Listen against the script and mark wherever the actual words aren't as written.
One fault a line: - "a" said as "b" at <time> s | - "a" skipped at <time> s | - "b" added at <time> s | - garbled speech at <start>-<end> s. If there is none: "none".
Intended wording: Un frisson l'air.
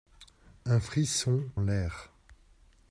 none